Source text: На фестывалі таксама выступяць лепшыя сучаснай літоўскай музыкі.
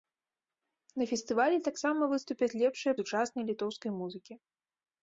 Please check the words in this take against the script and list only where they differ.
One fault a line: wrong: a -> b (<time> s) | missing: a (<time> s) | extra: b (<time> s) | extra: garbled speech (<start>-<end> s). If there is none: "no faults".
no faults